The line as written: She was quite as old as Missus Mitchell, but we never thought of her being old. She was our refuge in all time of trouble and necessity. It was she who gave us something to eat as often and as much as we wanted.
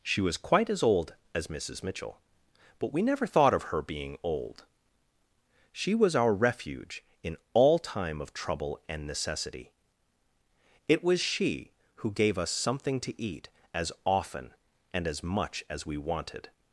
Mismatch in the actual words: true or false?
false